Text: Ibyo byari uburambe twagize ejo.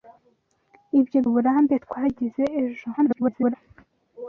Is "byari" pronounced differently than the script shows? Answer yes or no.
yes